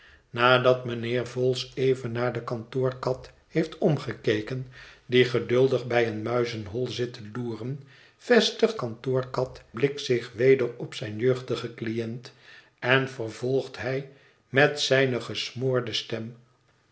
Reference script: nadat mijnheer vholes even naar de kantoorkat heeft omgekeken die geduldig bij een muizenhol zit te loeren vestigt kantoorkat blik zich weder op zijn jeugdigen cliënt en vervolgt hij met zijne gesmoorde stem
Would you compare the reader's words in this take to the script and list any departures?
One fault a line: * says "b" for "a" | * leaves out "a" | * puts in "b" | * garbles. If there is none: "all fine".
all fine